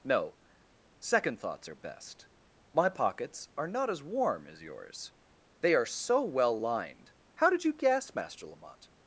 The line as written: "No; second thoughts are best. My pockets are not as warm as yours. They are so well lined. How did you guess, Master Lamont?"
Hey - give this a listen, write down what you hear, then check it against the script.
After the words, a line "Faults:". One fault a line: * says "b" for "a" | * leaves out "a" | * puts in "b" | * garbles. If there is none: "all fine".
"No; second thoughts are best. My pockets are not as warm as yours. They are so well lined. How did you guess, Master Lamont?"
Faults:
all fine